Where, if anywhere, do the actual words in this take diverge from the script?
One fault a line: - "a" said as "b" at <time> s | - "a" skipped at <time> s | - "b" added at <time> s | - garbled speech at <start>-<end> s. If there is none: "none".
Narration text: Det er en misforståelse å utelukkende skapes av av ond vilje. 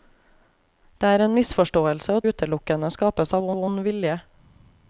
none